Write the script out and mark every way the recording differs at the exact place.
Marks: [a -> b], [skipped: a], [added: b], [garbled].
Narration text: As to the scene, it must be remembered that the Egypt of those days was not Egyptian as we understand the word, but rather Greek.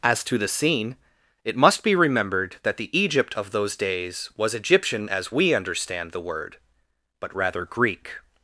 As to the scene, it must be remembered that the Egypt of those days was [skipped: not] Egyptian as we understand the word, but rather Greek.